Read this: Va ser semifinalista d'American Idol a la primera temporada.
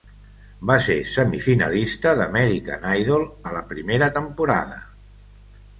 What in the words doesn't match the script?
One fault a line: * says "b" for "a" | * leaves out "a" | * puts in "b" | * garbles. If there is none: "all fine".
all fine